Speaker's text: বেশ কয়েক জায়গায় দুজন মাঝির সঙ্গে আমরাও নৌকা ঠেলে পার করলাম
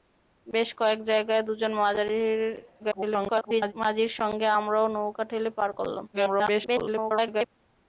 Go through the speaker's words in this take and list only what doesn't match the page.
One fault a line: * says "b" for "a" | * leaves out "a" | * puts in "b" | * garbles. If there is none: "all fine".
* garbles
* garbles